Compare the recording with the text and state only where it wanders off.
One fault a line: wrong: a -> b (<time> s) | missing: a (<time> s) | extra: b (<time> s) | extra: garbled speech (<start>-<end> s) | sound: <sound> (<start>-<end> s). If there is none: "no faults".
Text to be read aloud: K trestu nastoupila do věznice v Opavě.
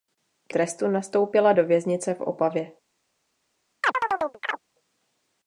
sound: chirp (3.8-4.6 s)